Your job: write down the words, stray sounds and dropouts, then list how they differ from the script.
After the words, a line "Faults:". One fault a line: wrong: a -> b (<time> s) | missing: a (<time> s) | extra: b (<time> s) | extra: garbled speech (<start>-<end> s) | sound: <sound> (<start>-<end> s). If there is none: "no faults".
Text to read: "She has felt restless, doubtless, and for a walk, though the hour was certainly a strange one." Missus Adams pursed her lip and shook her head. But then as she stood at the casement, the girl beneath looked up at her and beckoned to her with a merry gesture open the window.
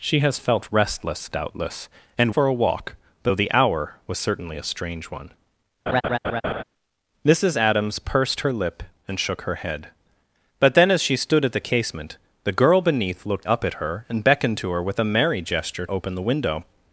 "She has felt restless, doubtless, and for a walk, though the hour was certainly a strange one." Missus Adams pursed her lip and shook her head. But then as she stood at the casement, the girl beneath looked up at her and beckoned to her with a merry gesture open the window.
Faults:
sound: laugh (5.9-6.6 s)